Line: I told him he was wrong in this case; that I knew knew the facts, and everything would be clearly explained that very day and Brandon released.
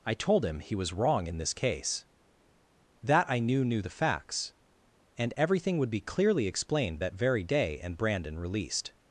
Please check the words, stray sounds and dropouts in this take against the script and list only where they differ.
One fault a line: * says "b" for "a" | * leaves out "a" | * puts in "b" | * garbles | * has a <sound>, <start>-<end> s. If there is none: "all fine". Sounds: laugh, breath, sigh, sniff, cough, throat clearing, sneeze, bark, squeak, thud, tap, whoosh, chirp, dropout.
all fine